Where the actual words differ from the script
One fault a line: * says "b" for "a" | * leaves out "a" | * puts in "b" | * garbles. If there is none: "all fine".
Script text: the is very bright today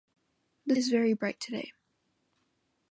all fine